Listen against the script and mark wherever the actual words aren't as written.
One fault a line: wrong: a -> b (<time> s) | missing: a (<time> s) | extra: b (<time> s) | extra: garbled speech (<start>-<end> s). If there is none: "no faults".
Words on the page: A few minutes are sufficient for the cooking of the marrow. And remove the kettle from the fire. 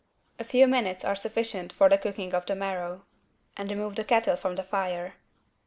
no faults